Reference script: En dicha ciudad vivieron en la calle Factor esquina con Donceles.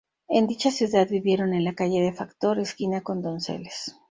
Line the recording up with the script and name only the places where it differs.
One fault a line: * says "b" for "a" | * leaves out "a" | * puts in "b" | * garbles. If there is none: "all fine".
* puts in "de"